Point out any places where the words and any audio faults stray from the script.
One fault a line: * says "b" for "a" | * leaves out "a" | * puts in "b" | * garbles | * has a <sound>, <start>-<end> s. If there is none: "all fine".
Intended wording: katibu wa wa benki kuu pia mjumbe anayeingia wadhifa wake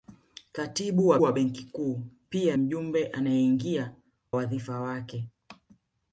all fine